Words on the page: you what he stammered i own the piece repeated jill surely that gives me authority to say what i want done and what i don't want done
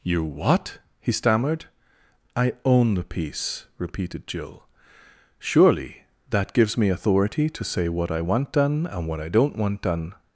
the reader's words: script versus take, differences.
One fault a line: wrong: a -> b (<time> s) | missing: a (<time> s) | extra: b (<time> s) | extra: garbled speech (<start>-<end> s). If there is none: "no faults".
no faults